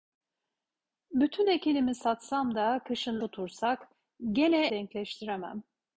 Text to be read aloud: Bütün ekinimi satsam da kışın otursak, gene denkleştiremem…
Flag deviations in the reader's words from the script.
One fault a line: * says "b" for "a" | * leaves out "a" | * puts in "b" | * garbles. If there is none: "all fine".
all fine